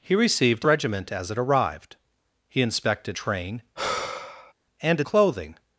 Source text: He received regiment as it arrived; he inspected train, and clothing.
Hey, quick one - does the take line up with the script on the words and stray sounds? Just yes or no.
no